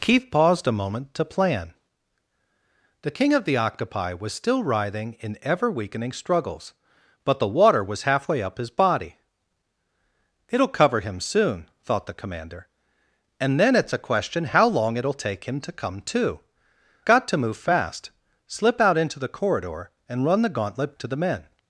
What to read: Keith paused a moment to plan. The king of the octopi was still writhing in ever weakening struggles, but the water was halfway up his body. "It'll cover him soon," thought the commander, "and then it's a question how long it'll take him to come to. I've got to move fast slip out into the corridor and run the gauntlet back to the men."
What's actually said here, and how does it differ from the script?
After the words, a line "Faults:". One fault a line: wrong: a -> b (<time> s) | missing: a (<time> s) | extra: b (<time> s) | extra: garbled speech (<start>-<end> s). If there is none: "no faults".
Keith paused a moment to plan. The king of the octopi was still writhing in ever weakening struggles, but the water was halfway up his body. "It'll cover him soon," thought the commander, "and then it's a question how long it'll take him to come to. Got to move fast slip out into the corridor and run the gauntlet to the men."
Faults:
missing: I've (16.4 s)
missing: back (21.0 s)